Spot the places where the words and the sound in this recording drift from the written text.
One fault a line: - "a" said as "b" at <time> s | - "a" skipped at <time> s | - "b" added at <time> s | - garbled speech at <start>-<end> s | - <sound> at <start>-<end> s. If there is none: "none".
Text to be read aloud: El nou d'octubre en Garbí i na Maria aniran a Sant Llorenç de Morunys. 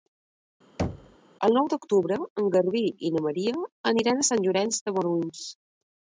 - thud at 0.8-1.2 s